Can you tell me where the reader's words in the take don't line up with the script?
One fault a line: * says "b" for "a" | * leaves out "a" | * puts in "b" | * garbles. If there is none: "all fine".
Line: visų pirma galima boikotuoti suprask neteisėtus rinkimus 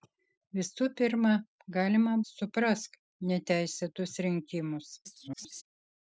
* leaves out "boikotuoti"
* garbles